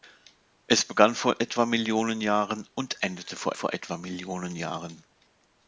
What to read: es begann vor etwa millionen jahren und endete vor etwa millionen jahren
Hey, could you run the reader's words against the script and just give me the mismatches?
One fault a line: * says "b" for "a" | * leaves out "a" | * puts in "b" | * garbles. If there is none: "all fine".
* puts in "vor"